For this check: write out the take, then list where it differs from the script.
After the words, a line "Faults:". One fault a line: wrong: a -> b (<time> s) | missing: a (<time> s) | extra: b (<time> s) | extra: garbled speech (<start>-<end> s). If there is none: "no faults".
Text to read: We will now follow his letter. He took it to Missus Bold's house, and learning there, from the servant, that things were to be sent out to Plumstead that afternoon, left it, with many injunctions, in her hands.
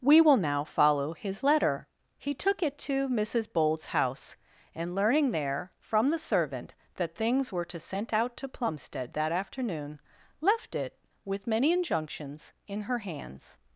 We will now follow his letter. He took it to Missus Bold's house, and learning there, from the servant, that things were to sent out to Plumstead that afternoon, left it, with many injunctions, in her hands.
Faults:
missing: be (7.8 s)